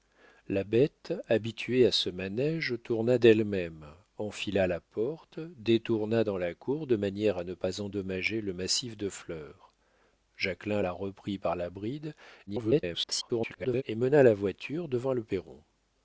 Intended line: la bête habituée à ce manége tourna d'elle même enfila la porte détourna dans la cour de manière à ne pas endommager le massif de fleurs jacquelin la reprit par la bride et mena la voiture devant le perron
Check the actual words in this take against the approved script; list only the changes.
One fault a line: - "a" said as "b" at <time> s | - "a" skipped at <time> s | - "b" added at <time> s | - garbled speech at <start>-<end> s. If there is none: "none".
- garbled speech at 12.5-13.8 s